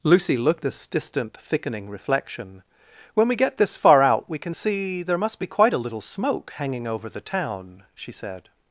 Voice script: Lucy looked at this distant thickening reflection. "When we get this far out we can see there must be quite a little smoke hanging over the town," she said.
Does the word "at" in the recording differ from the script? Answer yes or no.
yes